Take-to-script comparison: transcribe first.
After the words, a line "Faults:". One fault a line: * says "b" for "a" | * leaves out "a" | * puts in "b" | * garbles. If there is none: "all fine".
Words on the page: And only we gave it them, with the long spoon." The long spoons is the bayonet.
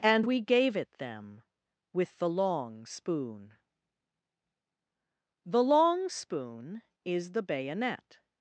And we gave it them, with the long spoon." The long spoon is the bayonet.
Faults:
* leaves out "only"
* says "spoon" for "spoons"